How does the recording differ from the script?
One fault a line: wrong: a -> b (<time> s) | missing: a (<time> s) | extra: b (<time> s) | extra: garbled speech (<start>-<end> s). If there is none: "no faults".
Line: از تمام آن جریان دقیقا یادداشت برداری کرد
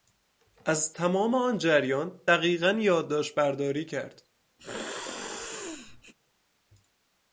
no faults